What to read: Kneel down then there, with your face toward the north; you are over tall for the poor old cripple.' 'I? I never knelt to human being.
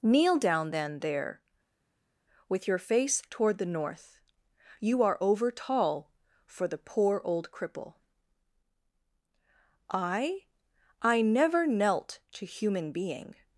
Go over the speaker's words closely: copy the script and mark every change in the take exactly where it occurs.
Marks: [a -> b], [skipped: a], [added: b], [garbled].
Kneel down then there, with your face toward the north; you are over tall for the poor old cripple.' 'I? I never knelt to human being.